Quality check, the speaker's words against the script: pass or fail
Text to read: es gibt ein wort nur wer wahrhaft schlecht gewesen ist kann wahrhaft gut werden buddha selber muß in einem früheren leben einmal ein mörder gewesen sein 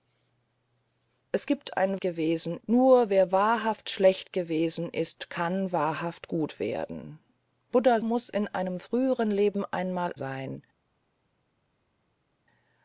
fail